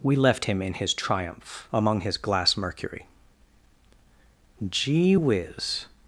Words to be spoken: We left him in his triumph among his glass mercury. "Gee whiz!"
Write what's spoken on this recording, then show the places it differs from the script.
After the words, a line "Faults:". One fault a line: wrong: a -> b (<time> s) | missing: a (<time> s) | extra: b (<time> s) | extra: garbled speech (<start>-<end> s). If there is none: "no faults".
We left him in his triumph among his glass mercury. "Gee whiz!"
Faults:
no faults